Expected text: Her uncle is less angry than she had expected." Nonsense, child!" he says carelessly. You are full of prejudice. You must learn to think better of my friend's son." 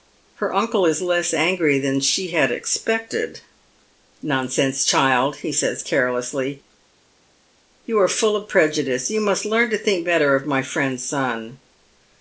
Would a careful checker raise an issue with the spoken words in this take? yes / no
no